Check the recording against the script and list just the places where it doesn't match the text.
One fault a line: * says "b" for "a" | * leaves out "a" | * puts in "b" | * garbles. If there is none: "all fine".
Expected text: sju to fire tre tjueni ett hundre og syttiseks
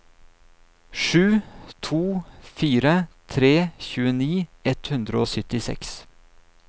all fine